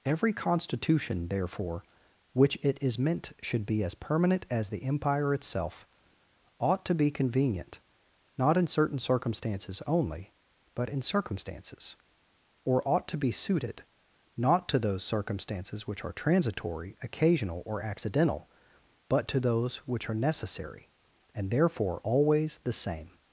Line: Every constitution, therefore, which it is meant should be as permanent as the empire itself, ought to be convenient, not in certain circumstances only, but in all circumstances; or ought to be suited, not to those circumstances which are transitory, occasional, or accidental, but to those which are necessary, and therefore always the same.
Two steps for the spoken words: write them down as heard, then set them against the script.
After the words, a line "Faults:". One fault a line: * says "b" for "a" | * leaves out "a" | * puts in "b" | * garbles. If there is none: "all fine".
Every constitution, therefore, which it is meant should be as permanent as the empire itself, ought to be convenient, not in certain circumstances only, but in circumstances; or ought to be suited, not to those circumstances which are transitory, occasional, or accidental, but to those which are necessary, and therefore always the same.
Faults:
* leaves out "all"